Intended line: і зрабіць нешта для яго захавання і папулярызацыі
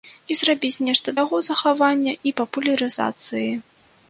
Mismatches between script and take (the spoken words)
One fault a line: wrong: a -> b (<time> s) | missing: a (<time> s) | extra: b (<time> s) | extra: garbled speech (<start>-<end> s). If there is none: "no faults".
missing: для (1.1 s)